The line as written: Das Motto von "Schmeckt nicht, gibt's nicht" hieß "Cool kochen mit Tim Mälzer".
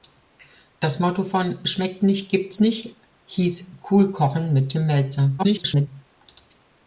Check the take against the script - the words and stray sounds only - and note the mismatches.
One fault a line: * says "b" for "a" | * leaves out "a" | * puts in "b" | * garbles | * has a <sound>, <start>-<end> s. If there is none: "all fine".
* garbles